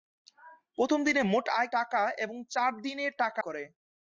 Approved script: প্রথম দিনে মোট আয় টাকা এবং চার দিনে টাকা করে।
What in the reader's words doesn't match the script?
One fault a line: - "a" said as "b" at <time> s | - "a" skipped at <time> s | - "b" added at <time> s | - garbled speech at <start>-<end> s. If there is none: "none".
none